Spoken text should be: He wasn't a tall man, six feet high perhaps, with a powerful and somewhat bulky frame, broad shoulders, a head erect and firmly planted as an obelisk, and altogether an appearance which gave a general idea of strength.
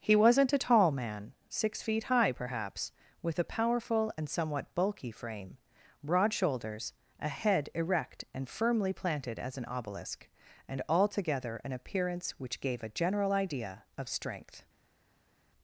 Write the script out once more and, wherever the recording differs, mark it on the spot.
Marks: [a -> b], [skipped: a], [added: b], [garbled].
He wasn't a tall man, six feet high perhaps, with a powerful and somewhat bulky frame, broad shoulders, a head erect and firmly planted as an obelisk, and altogether an appearance which gave a general idea of strength.